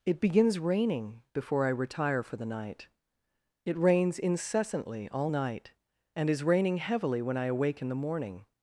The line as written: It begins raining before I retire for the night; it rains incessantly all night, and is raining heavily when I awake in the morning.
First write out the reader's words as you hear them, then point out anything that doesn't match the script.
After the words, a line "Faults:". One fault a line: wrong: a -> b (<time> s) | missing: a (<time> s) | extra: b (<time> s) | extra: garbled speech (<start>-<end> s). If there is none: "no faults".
It begins raining before I retire for the night; it rains incessantly all night, and is raining heavily when I awake in the morning.
Faults:
no faults